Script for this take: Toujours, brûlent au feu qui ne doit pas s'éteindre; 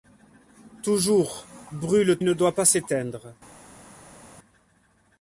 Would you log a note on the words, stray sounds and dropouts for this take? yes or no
yes